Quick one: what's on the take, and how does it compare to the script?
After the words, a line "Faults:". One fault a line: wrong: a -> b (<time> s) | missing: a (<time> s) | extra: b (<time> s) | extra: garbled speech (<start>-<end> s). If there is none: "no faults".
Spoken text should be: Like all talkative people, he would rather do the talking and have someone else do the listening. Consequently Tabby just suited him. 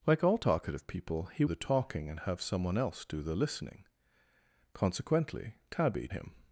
Like all talkative people, he the talking and have someone else do the listening. Consequently Tabby him.
Faults:
missing: would rather do (1.4 s)
missing: just suited (6.1 s)